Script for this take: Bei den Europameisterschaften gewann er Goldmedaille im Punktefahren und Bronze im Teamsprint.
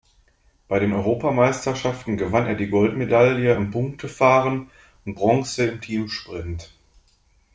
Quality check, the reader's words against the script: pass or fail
fail